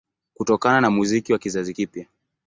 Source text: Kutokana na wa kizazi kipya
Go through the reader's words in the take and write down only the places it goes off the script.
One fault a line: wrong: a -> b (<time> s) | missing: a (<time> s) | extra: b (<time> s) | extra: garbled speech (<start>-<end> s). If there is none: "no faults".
extra: muziki (0.9 s)